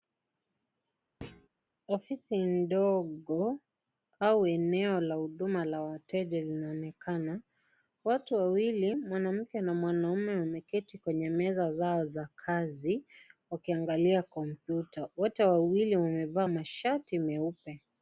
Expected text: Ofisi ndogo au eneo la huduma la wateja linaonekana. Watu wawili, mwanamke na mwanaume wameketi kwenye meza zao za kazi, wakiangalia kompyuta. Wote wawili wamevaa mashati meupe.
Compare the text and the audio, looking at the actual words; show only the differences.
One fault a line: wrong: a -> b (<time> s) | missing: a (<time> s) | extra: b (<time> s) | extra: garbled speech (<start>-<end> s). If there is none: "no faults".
no faults